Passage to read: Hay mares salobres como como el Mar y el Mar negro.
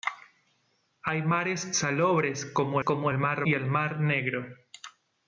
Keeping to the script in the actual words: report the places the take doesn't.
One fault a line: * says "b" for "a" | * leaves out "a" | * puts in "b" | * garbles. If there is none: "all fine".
all fine